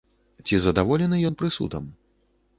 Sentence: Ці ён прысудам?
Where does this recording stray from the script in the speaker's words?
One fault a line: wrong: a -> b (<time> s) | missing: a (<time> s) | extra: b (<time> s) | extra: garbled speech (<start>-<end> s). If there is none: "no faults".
extra: задаволены (0.6 s)